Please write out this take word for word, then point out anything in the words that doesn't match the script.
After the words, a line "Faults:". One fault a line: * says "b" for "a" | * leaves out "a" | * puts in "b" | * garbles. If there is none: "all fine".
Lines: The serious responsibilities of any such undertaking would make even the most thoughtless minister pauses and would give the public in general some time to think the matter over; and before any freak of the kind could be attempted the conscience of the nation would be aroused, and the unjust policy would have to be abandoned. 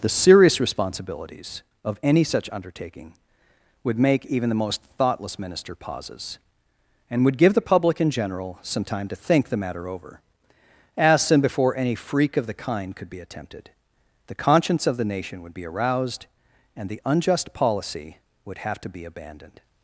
The serious responsibilities of any such undertaking would make even the most thoughtless minister pauses and would give the public in general some time to think the matter over; as and before any freak of the kind could be attempted the conscience of the nation would be aroused, and the unjust policy would have to be abandoned.
Faults:
* puts in "as"